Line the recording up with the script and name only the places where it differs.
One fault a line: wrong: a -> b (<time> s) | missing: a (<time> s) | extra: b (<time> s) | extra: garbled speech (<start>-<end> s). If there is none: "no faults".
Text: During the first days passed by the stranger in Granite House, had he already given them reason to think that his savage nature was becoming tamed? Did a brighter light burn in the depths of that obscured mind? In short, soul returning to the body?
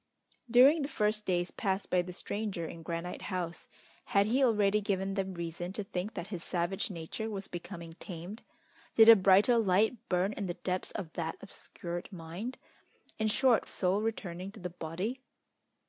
no faults